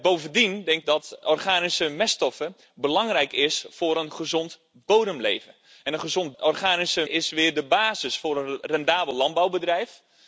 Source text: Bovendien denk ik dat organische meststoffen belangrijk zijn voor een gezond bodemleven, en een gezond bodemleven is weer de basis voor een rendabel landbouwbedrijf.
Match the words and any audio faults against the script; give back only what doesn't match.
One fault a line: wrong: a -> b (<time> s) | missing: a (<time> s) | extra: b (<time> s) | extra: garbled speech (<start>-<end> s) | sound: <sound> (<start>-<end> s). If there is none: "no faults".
missing: ik (0.8 s)
wrong: bodemleven -> organische (6.4 s)